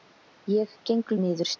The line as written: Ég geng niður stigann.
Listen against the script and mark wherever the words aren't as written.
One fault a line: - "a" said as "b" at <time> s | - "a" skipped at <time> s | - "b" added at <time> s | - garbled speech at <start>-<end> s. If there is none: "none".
none